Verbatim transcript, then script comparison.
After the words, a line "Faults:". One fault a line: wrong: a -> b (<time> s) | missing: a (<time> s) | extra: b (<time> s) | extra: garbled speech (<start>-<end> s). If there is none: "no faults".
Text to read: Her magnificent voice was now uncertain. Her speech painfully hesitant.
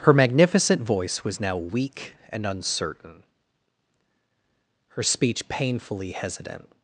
Her magnificent voice was now weak and uncertain. Her speech painfully hesitant.
Faults:
extra: weak and (1.6 s)